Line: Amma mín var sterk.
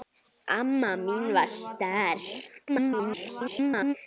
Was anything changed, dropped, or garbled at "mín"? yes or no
no